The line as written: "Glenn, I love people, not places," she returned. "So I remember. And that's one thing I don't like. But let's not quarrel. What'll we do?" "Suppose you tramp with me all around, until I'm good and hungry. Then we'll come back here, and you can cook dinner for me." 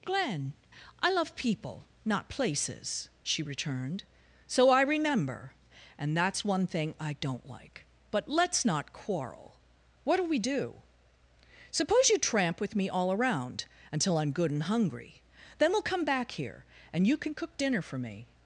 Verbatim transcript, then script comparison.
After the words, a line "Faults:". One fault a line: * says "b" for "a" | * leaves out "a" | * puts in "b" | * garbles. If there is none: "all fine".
"Glenn, I love people, not places," she returned. "So I remember. And that's one thing I don't like. But let's not quarrel. What'll we do?" "Suppose you tramp with me all around, until I'm good and hungry. Then we'll come back here, and you can cook dinner for me."
Faults:
all fine